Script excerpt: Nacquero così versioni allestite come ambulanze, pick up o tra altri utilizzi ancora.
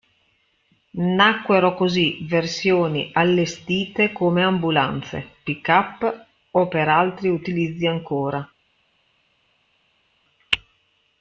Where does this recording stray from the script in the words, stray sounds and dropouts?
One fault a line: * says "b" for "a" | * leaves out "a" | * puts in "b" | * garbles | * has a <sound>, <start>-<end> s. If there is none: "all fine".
* says "per" for "tra"